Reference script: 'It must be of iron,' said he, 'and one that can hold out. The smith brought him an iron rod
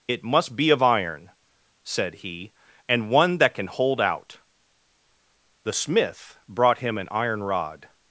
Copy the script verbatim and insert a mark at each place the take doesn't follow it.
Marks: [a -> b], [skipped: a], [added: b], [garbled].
'It must be of iron,' said he, 'and one that can hold out. The smith brought him an iron rod